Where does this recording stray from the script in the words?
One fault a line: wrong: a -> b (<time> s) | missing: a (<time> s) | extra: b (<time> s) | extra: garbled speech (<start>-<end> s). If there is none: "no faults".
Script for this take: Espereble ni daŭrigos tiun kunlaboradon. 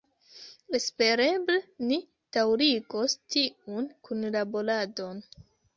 no faults